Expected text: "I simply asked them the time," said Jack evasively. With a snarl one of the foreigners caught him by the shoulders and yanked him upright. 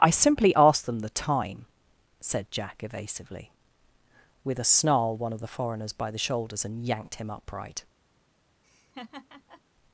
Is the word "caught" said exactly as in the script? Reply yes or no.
no